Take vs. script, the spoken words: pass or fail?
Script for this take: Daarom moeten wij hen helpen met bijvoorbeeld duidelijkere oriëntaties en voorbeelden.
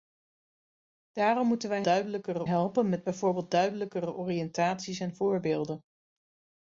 fail